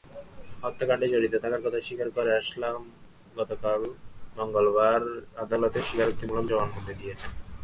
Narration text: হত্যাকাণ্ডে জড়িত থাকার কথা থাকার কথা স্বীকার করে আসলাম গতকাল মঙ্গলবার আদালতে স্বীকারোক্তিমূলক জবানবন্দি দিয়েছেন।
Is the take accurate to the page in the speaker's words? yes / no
no